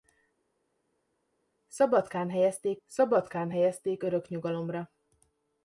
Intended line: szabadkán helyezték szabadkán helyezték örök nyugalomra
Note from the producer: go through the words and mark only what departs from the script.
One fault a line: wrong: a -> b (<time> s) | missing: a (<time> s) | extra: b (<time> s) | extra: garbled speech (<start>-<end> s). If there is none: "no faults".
no faults